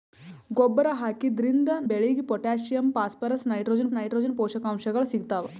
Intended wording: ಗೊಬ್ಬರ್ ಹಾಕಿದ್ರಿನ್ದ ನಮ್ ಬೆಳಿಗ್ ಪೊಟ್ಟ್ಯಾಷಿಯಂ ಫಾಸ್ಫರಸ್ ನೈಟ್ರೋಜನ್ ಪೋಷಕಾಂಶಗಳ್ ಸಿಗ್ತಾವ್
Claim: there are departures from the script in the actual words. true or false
true